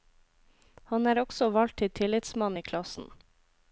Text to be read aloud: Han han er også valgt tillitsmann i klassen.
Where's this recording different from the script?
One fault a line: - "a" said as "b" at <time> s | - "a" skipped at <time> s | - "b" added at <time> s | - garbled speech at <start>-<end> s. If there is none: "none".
- "han" skipped at 1.1 s
- "til" added at 1.8 s